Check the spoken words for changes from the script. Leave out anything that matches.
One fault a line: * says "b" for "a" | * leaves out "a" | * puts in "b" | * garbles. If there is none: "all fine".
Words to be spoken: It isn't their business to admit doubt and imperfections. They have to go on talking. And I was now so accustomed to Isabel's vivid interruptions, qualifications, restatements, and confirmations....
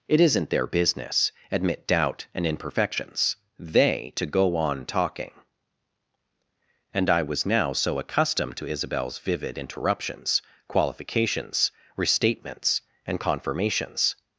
* leaves out "to"
* leaves out "have"